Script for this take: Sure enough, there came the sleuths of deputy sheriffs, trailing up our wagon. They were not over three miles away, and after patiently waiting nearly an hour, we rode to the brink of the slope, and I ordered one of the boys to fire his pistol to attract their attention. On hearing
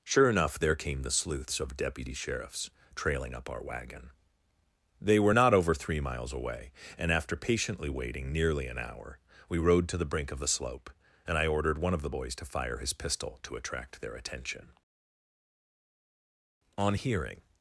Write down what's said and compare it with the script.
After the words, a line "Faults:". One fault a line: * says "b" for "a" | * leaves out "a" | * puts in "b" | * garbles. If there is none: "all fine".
Sure enough, there came the sleuths of deputy sheriffs, trailing up our wagon. They were not over three miles away, and after patiently waiting nearly an hour, we rode to the brink of the slope, and I ordered one of the boys to fire his pistol to attract their attention. On hearing
Faults:
all fine